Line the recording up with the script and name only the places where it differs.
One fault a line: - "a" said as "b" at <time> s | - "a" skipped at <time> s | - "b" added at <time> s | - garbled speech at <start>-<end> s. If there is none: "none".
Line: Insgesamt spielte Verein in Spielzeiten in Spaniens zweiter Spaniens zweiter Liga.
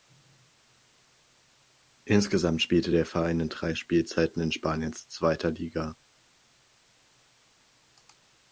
- "der" added at 2.9 s
- "drei" added at 3.5 s
- "Spaniens zweiter" skipped at 5.5 s